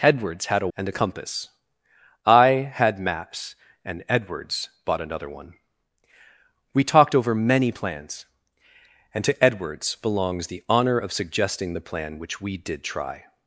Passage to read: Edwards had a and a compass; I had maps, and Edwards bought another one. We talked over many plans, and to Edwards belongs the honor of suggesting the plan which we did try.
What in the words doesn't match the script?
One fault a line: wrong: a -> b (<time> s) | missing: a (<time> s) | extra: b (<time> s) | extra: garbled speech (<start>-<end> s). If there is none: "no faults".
no faults